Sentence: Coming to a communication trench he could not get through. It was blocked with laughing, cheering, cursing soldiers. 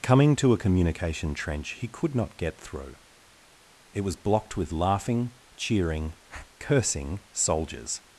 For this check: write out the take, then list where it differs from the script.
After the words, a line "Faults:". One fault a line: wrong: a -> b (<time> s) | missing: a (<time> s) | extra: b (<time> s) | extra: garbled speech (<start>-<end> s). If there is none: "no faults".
Coming to a communication trench he could not get through. It was blocked with laughing, cheering, cursing soldiers.
Faults:
no faults